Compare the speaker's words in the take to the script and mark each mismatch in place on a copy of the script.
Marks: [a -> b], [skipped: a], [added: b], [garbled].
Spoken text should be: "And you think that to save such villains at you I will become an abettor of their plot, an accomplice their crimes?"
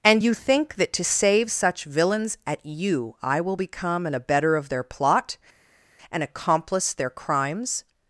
"And you think that to save such villains at you I will become an abettor of their plot, an accomplice their crimes?"